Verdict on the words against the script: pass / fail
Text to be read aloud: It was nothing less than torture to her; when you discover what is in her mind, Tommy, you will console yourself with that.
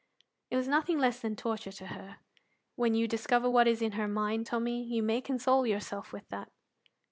fail